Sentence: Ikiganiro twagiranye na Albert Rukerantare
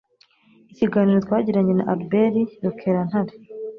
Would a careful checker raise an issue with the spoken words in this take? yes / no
no